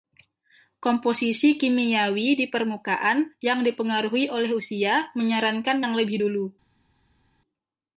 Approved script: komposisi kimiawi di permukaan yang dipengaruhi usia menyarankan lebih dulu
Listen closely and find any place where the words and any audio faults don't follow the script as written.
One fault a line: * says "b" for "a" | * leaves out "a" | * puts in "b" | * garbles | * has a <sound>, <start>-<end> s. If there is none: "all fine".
* puts in "oleh"
* puts in "yang"